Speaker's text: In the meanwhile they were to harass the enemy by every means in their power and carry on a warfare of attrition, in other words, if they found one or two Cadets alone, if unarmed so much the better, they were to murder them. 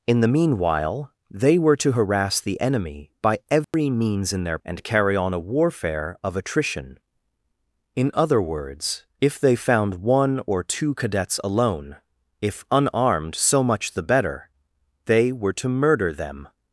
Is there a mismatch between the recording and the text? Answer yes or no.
yes